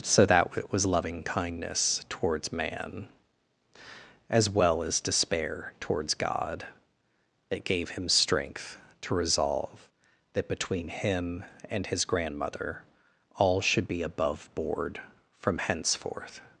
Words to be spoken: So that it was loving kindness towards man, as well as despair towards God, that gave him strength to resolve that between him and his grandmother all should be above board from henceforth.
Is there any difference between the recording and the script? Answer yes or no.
yes